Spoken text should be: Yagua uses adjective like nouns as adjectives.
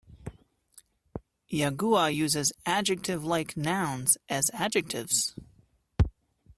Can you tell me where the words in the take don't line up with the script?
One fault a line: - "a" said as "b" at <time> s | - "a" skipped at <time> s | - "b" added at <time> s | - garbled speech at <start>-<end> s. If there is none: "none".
none